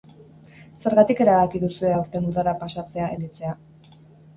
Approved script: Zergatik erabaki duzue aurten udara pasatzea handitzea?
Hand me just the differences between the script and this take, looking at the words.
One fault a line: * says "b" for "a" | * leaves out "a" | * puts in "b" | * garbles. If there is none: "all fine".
all fine